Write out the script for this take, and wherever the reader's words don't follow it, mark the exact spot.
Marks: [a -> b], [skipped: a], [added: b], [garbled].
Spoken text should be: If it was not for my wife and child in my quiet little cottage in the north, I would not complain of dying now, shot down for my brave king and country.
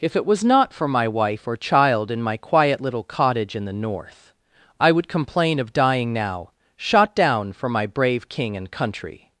If it was not for my wife [and -> or] child in my quiet little cottage in the north, I would [skipped: not] complain of dying now, shot down for my brave king and country.